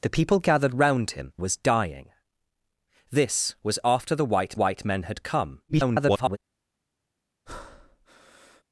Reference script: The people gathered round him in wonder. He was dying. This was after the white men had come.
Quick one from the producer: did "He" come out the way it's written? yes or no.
no